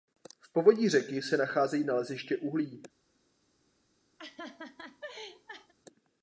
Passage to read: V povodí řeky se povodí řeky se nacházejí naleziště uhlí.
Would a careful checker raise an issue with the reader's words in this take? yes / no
yes